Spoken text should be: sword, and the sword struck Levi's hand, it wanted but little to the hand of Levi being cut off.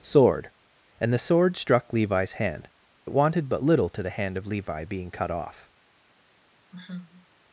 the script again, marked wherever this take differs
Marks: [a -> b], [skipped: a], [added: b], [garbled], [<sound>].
sword, and the sword struck Levi's hand, it wanted but little to the hand of Levi being cut off. [sigh]